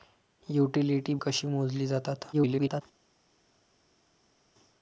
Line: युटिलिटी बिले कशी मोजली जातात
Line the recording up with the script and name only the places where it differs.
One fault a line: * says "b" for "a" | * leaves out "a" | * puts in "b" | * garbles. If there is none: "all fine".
* leaves out "बिले"
* garbles